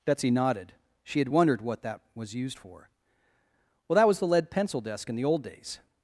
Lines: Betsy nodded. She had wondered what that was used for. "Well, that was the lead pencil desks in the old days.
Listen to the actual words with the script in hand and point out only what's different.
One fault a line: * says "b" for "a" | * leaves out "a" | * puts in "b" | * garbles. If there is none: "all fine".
* says "desk" for "desks"